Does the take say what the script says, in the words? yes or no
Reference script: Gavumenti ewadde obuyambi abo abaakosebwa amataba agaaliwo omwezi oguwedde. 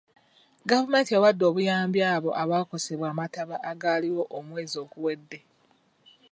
yes